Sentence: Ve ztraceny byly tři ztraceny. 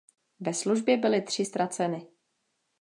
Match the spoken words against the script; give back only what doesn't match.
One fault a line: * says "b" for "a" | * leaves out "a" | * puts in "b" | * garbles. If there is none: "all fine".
* says "službě" for "ztraceny"